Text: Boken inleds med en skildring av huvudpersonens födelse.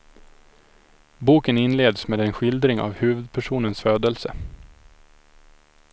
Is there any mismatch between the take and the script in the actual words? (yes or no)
no